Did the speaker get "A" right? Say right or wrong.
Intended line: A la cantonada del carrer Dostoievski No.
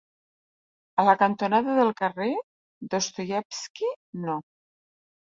right